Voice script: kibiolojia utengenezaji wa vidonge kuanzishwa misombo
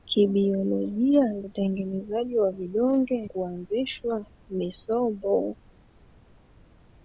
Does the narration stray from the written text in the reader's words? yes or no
no